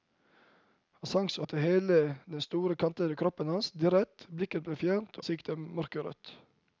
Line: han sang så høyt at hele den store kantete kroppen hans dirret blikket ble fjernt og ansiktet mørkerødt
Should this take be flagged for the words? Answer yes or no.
yes